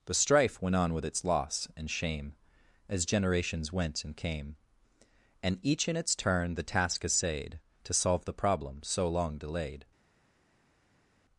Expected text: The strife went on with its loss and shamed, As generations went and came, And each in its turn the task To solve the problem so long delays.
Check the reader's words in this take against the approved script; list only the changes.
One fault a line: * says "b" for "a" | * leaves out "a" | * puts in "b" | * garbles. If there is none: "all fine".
* says "shame" for "shamed"
* puts in "essayed"
* says "delayed" for "delays"